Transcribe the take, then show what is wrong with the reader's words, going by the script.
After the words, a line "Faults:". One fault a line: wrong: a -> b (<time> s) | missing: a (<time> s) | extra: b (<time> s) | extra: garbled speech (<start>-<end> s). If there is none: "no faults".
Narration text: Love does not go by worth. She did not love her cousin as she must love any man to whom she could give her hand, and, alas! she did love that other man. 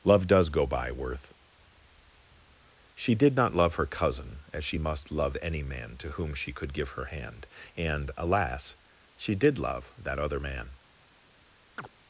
Love does go by worth. She did not love her cousin as she must love any man to whom she could give her hand, and, alas! she did love that other man.
Faults:
missing: not (0.5 s)